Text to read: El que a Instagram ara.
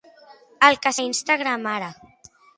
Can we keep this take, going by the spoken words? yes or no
yes